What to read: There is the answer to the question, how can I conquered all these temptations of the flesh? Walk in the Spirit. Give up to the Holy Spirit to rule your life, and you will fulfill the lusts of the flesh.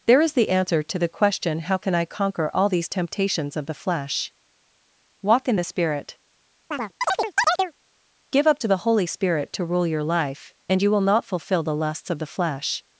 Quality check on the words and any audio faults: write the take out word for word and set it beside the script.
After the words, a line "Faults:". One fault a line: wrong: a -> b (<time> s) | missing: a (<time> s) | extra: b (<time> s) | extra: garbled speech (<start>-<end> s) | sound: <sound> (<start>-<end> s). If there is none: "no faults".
There is the answer to the question, how can I conquer all these temptations of the flesh? Walk in the Spirit. Give up to the Holy Spirit to rule your life, and you will not fulfill the lusts of the flesh.
Faults:
wrong: conquered -> conquer (2.0 s)
sound: chirp (6.7-7.7 s)
extra: not (11.0 s)